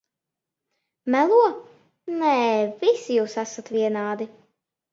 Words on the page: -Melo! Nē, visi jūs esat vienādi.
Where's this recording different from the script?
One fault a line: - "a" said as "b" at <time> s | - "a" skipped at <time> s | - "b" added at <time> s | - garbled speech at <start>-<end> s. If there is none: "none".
none